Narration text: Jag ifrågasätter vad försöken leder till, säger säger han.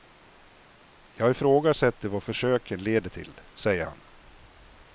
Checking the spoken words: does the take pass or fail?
fail